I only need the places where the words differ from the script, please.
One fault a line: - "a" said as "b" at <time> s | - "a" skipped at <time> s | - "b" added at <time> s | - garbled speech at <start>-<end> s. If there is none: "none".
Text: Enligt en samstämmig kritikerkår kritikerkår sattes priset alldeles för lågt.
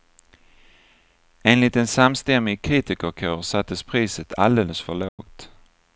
- "kritikerkår" skipped at 3.4 s